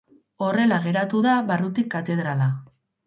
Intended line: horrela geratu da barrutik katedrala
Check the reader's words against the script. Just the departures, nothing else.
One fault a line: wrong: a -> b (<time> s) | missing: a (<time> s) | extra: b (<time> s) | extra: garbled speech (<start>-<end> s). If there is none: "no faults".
no faults